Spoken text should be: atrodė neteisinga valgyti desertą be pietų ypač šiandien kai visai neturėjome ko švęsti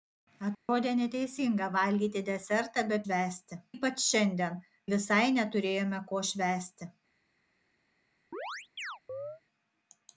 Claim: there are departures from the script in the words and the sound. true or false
true